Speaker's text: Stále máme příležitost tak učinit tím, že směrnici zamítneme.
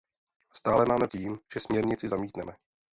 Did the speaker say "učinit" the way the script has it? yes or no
no